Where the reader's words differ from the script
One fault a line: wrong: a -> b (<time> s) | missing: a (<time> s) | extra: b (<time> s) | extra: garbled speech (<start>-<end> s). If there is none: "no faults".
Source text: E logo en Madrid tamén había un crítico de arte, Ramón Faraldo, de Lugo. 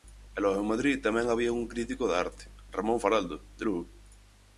no faults